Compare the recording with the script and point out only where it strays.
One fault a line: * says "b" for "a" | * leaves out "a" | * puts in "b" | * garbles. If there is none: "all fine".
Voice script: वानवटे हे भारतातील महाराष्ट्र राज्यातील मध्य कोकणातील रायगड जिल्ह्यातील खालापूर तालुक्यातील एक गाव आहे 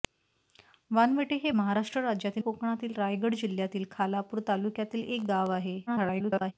* leaves out "भारतातील"
* leaves out "मध्य"
* garbles